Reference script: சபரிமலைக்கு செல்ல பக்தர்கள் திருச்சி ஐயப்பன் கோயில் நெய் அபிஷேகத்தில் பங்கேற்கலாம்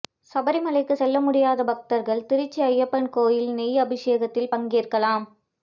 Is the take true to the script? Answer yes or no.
no